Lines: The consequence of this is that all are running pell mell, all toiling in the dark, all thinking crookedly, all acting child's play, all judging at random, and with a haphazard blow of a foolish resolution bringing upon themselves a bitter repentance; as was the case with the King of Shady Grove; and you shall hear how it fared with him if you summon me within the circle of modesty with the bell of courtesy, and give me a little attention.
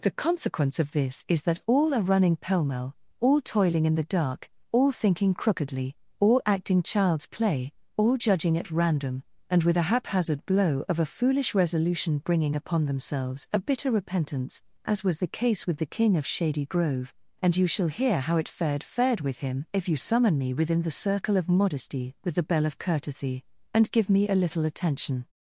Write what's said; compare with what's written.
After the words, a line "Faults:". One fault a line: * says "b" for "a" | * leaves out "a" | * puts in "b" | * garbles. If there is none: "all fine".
The consequence of this is that all are running pell mell, all toiling in the dark, all thinking crookedly, all acting child's play, all judging at random, and with a haphazard blow of a foolish resolution bringing upon themselves a bitter repentance; as was the case with the King of Shady Grove; and you shall hear how it fared fared with him if you summon me within the circle of modesty with the bell of courtesy, and give me a little attention.
Faults:
* puts in "fared"